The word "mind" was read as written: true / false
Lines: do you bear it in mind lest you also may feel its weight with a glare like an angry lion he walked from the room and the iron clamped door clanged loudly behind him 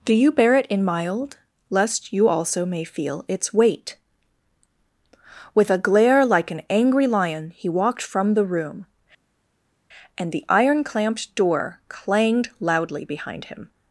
false